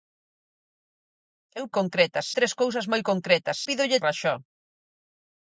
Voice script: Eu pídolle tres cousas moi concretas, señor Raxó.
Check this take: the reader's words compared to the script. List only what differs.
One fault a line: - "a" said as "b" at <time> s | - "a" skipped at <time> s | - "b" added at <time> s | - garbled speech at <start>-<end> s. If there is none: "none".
- "pídolle" said as "concretas" at 1.8 s
- "señor" said as "pídolle" at 3.7 s